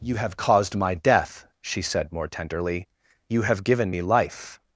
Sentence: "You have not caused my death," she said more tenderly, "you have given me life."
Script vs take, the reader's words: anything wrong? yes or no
yes